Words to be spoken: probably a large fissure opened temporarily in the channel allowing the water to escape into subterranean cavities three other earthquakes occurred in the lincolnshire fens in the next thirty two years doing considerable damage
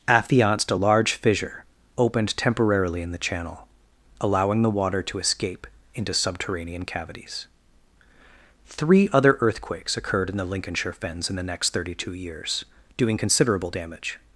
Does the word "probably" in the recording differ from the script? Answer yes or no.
yes